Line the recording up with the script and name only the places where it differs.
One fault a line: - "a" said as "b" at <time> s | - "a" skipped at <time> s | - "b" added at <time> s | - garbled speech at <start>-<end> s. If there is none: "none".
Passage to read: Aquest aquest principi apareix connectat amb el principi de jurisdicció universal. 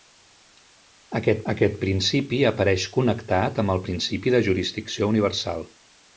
none